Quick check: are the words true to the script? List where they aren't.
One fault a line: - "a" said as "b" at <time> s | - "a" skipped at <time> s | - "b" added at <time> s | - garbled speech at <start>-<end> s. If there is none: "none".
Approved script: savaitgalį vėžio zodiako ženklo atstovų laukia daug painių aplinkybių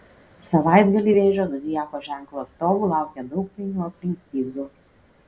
none